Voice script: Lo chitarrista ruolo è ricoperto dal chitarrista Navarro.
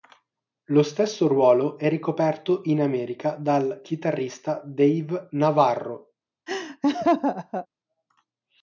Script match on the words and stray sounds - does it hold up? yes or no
no